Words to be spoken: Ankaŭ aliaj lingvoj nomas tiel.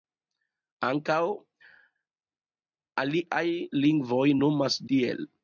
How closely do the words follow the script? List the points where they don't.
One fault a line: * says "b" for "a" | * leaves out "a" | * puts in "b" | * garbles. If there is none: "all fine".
all fine